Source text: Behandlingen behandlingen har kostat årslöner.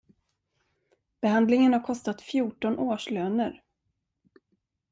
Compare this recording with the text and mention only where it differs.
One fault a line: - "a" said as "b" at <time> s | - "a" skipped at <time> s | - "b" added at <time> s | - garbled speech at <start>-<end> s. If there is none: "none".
- "behandlingen" skipped at 1.7 s
- "fjorton" added at 2.2 s